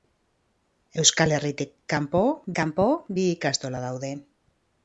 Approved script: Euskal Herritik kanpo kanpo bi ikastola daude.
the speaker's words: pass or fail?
pass